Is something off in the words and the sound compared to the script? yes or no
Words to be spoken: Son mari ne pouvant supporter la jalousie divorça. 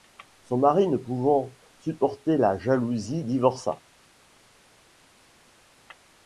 no